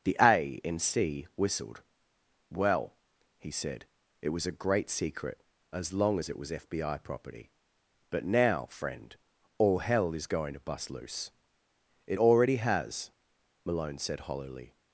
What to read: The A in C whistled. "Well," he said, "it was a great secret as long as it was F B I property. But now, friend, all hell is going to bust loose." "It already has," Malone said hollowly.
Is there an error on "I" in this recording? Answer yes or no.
no